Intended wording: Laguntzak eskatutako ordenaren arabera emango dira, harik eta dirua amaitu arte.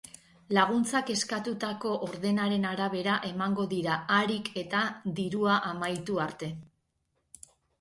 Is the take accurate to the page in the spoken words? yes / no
yes